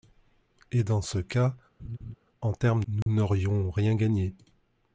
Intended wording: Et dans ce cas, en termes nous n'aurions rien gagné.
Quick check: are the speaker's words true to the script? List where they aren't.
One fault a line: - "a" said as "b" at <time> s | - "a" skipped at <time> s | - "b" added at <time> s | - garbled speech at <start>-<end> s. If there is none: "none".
none